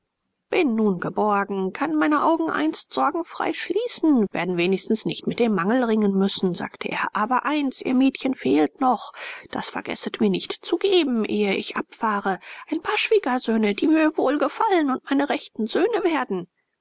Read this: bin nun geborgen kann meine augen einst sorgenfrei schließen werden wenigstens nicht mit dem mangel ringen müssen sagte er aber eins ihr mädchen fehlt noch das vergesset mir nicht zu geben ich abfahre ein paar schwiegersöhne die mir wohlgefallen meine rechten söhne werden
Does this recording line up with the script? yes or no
no